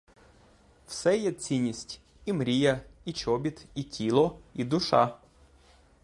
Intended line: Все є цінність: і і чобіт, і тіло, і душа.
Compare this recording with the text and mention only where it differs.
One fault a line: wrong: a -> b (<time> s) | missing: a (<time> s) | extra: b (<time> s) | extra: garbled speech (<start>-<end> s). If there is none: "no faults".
extra: мрія (2.3 s)